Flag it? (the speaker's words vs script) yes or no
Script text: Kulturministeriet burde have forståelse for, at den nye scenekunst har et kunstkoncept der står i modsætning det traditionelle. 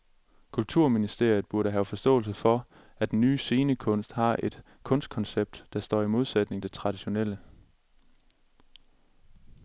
no